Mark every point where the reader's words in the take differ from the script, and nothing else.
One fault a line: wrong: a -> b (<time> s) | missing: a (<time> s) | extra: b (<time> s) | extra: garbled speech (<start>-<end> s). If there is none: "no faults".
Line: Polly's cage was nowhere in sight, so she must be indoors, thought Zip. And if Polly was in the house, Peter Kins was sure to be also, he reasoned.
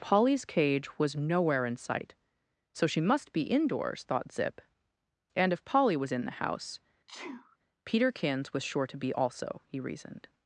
no faults